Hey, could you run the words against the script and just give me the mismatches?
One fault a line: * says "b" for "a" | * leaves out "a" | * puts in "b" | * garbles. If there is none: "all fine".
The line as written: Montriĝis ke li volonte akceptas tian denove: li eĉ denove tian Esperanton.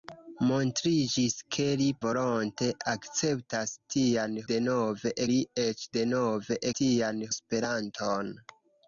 all fine